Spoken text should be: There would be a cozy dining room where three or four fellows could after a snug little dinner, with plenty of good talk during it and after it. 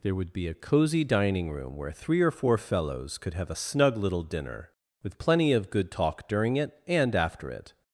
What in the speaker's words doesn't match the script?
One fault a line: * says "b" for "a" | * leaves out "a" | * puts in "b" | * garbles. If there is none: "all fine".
* says "have" for "after"